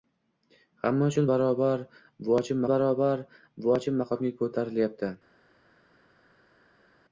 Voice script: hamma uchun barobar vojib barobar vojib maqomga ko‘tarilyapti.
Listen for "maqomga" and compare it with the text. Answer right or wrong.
right